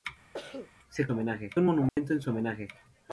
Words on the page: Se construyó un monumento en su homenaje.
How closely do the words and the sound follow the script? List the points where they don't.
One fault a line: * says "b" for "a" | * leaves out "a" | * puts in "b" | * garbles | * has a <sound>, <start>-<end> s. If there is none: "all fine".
* has a cough, 0.3-0.7 s
* says "homenaje" for "construyó"
* has a dropout, 1.9-2.0 s